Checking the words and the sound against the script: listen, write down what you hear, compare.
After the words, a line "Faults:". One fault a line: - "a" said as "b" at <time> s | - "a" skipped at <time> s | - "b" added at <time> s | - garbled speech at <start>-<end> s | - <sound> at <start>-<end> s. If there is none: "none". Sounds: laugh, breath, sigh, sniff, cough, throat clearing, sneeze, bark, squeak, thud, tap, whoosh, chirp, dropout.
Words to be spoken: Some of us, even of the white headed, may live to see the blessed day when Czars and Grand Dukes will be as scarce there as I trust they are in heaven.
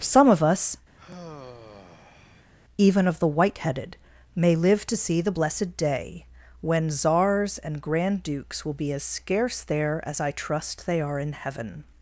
Some of us, even of the white headed, may live to see the blessed day when Czars and Grand Dukes will be as scarce there as I trust they are in heaven.
Faults:
- sigh at 1.0-2.5 s